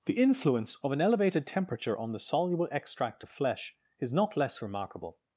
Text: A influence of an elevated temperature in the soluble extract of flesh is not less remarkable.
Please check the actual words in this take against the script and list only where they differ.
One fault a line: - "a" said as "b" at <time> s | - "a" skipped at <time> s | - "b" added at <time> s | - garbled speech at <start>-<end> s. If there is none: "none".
- "A" said as "The" at 0.1 s
- "in" said as "on" at 2.0 s